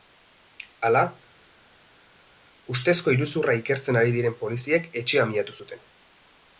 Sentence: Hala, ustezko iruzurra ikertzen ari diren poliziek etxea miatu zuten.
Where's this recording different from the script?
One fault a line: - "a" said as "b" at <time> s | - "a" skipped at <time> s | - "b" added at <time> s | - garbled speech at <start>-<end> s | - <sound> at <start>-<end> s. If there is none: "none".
none